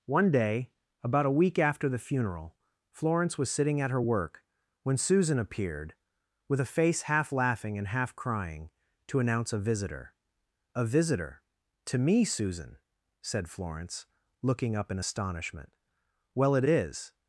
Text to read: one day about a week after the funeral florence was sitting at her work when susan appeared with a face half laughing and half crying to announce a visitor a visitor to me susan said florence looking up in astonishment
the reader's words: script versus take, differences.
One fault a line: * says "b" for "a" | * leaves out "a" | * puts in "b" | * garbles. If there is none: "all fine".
* puts in "well it is"